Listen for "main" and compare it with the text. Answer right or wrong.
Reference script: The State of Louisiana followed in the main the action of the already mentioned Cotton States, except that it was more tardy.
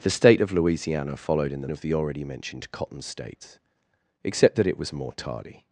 wrong